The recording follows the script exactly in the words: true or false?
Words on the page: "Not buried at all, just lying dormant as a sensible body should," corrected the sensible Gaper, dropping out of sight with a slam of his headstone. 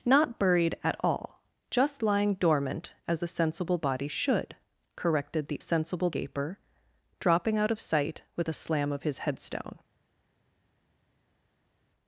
true